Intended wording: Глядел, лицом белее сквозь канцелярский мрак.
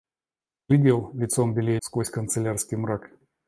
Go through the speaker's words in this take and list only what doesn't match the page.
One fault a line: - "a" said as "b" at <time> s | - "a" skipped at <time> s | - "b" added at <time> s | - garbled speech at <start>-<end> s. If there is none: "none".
none